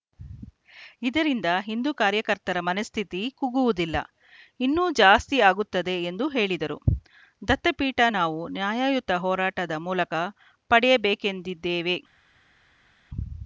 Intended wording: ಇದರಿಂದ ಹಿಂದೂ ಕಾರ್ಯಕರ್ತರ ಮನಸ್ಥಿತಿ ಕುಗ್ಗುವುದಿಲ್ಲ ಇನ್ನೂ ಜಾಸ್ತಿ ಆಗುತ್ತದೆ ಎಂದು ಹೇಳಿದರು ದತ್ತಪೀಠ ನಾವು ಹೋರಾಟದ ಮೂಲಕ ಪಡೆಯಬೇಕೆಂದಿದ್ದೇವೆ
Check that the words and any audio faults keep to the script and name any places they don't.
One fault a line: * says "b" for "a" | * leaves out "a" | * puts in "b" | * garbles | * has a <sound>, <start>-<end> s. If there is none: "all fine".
* puts in "ನ್ಯಾಯಯುತ"